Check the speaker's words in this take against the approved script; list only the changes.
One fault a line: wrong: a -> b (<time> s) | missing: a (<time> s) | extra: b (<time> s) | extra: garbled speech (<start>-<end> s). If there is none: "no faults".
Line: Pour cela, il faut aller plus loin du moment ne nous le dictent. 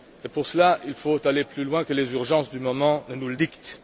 extra: que les urgences (1.8 s)